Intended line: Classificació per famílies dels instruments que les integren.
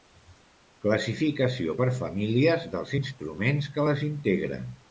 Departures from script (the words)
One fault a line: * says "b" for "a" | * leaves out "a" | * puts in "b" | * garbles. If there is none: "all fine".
all fine